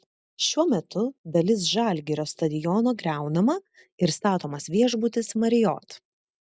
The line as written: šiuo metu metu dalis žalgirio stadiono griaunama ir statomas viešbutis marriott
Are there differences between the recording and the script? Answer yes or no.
yes